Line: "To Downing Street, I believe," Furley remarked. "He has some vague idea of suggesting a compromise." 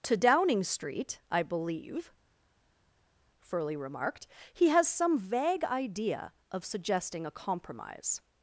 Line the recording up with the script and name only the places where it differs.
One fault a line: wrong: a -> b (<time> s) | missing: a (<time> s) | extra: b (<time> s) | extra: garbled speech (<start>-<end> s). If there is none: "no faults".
no faults